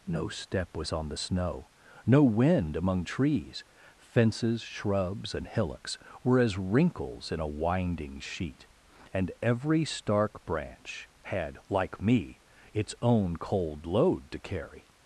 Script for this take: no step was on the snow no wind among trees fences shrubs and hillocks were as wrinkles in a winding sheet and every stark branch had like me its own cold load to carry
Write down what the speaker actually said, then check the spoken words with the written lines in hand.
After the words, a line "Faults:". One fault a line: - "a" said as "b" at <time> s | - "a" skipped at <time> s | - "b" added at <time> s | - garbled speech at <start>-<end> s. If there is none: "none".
no step was on the snow no wind among trees fences shrubs and hillocks were as wrinkles in a winding sheet and every stark branch had like me its own cold load to carry
Faults:
none